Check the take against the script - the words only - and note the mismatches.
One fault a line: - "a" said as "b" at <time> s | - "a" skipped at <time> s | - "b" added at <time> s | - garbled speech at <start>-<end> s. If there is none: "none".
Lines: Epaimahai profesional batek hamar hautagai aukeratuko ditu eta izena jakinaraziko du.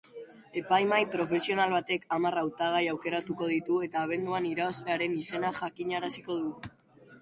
- "abenduan irabazlearen" added at 4.1 s